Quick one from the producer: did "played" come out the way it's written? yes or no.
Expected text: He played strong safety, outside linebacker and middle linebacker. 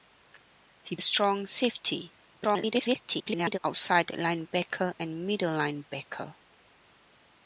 no